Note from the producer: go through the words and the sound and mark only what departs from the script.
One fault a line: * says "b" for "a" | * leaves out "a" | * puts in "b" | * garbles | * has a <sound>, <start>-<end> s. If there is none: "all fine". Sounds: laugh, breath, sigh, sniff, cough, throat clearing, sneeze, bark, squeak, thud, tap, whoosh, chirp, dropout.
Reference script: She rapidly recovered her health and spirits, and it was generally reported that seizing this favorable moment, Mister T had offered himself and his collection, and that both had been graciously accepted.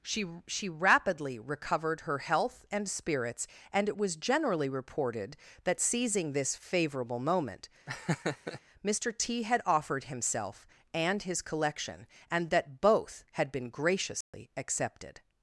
* puts in "she"
* has a laugh, 7.9-8.6 s
* has a dropout, 14.2-14.3 s